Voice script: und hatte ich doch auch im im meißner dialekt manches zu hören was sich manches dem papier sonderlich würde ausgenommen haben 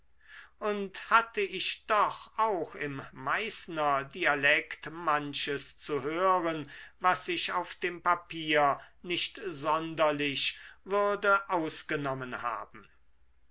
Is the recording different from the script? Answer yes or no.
yes